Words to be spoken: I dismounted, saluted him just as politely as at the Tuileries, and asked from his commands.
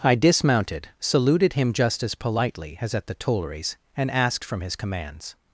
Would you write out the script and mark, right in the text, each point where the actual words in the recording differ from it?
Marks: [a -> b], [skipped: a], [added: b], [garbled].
I dismounted, saluted him just as politely as at the Tuileries, and asked from his commands.